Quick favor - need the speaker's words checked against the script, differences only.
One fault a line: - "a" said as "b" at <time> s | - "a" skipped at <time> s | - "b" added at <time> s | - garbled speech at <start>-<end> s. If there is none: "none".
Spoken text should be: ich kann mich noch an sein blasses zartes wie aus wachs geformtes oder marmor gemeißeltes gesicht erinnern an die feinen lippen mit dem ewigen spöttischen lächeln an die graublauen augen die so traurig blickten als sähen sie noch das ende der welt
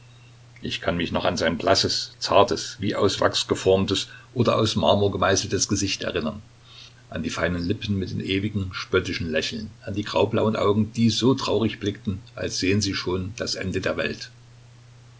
- "aus" added at 4.6 s
- "noch" said as "schon" at 12.9 s